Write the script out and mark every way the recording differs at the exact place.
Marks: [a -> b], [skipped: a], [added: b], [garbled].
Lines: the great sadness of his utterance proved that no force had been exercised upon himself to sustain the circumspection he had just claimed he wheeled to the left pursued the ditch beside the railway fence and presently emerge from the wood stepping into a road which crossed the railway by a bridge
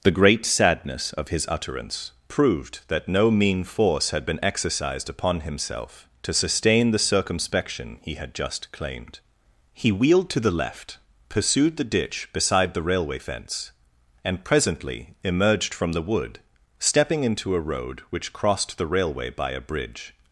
the great sadness of his utterance proved that no [added: mean] force had been exercised upon himself to sustain the circumspection he had just claimed he wheeled to the left pursued the ditch beside the railway fence and presently [emerge -> emerged] from the wood stepping into a road which crossed the railway by a bridge